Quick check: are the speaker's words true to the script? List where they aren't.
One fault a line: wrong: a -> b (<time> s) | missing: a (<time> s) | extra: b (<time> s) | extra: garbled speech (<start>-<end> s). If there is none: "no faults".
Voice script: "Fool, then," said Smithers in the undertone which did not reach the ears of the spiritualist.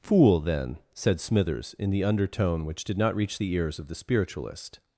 no faults